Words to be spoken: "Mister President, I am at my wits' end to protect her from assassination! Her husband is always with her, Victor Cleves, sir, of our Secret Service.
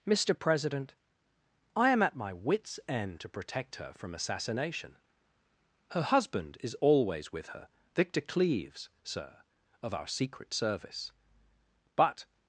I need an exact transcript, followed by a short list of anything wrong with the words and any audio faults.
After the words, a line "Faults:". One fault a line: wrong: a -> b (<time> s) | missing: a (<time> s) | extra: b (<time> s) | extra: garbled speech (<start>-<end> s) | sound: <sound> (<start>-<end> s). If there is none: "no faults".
"Mister President, I am at my wits' end to protect her from assassination! Her husband is always with her, Victor Cleves, sir, of our Secret Service. But
Faults:
extra: But (12.0 s)